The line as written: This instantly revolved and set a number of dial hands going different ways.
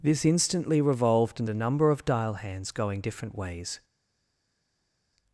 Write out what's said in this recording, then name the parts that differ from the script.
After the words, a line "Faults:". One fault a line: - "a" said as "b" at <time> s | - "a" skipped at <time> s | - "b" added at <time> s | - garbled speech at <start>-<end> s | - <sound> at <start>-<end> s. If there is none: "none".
This instantly revolved and a number of dial hands going different ways.
Faults:
- "set" skipped at 1.5 s